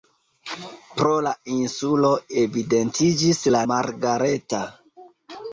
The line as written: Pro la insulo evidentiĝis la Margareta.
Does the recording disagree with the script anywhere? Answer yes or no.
no